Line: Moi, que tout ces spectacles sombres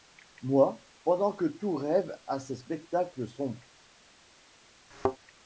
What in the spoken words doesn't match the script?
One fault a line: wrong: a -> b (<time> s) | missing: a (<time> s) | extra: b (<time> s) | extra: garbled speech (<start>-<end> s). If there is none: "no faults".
extra: pendant (1.0 s)
extra: rêve à (1.8 s)